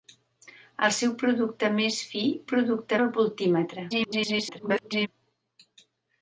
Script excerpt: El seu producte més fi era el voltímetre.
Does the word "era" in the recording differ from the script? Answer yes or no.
yes